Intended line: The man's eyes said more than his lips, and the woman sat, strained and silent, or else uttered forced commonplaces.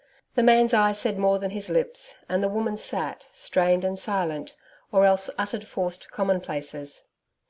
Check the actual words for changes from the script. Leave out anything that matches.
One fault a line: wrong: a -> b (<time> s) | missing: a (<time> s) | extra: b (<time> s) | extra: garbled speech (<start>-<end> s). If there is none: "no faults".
no faults